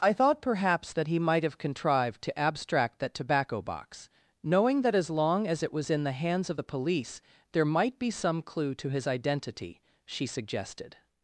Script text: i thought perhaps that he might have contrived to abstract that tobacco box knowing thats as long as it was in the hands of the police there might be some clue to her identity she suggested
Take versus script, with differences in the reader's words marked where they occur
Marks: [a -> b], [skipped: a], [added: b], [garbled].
i thought perhaps that he might have contrived to abstract that tobacco box knowing [thats -> that] as long as it was in the hands of the police there might be some clue to [her -> his] identity she suggested